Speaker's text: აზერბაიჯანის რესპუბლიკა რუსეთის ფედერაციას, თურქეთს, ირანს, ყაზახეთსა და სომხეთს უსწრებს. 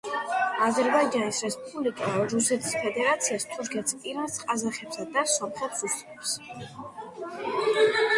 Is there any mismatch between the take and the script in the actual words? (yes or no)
no